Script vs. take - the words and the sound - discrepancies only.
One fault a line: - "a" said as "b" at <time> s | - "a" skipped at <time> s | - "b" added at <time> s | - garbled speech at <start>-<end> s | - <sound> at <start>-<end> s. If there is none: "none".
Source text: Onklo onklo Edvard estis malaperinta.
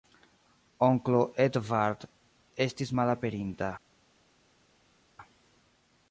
- "onklo" skipped at 1.2 s